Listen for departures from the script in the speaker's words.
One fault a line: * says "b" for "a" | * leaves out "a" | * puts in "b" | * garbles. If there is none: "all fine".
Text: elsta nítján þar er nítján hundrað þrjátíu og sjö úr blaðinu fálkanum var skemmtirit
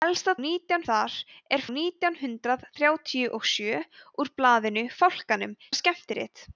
all fine